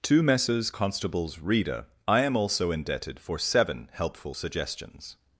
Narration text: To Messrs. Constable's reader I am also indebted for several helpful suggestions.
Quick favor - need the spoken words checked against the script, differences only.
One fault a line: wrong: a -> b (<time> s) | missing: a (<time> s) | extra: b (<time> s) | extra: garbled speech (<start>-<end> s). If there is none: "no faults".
wrong: several -> seven (3.4 s)